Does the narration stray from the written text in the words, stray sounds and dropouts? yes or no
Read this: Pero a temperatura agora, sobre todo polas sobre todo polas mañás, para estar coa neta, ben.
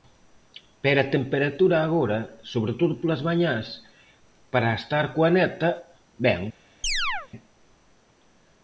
yes